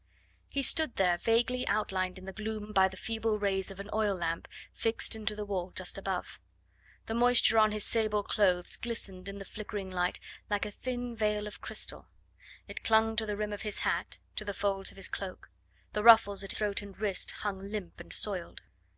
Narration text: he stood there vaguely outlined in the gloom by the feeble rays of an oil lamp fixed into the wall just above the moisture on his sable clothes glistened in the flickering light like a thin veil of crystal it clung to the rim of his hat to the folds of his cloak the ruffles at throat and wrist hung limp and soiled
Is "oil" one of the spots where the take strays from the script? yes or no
no